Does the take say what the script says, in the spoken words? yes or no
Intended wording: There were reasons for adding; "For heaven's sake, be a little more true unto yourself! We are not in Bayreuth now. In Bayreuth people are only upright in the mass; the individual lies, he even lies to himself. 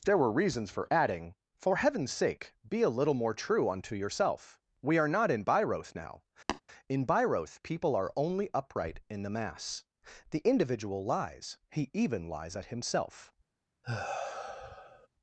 no